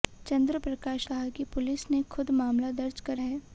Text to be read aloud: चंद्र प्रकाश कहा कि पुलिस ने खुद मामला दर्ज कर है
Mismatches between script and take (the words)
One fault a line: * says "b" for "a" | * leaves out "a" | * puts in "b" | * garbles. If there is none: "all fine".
all fine